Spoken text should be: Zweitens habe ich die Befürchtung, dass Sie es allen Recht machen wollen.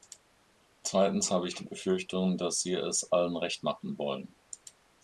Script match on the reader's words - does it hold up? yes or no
yes